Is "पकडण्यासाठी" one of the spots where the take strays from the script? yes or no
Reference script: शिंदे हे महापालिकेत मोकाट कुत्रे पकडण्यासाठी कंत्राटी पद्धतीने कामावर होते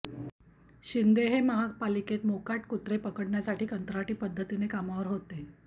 no